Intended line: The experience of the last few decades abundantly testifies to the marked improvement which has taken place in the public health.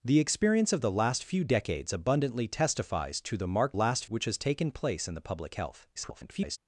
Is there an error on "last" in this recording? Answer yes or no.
no